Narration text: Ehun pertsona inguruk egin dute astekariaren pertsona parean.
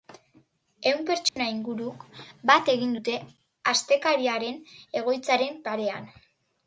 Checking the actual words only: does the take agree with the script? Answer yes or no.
no